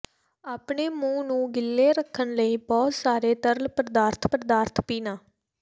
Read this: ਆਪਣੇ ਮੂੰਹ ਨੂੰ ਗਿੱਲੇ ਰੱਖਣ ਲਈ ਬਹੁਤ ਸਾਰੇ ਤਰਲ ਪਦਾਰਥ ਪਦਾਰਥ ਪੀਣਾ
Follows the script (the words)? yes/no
yes